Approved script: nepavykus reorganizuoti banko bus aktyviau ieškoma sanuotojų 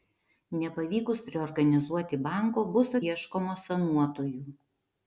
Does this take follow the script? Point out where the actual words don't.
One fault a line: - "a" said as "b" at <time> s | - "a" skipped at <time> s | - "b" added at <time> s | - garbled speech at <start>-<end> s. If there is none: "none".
- "aktyviau" skipped at 3.0 s